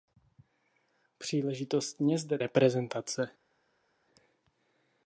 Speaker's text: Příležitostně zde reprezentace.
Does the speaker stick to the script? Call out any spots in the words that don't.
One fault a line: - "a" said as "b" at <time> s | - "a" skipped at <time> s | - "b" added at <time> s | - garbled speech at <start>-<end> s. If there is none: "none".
none